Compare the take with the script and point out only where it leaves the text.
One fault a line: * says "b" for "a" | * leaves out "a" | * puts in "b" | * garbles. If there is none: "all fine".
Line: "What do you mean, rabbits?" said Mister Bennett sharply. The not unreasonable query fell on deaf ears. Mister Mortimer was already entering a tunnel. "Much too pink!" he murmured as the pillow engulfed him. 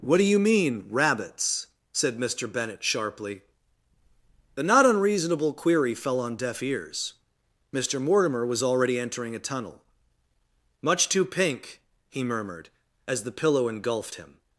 all fine